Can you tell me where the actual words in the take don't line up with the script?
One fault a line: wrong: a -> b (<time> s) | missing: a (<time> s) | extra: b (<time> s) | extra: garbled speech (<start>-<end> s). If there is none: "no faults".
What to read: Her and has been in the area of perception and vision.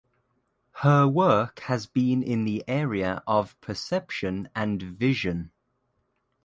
wrong: and -> work (1.1 s)